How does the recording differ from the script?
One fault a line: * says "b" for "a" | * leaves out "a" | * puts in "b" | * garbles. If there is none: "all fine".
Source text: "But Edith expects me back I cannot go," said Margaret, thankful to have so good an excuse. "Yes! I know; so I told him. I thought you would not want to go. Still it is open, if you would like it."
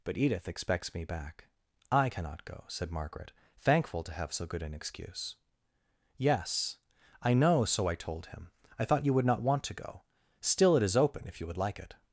all fine